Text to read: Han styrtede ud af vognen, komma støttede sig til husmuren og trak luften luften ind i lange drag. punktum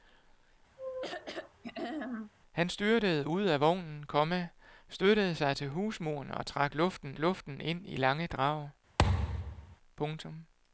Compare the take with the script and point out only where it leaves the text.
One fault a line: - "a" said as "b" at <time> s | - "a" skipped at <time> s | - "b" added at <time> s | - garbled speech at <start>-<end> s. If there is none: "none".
none